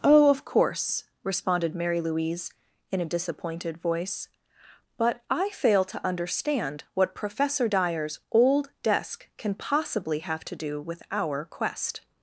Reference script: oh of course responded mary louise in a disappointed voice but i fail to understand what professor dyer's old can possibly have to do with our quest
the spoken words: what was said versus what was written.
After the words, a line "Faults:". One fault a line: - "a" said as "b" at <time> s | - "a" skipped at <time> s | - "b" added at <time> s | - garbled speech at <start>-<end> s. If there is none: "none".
oh of course responded mary louise in a disappointed voice but i fail to understand what professor dyer's old desk can possibly have to do with our quest
Faults:
- "desk" added at 8.8 s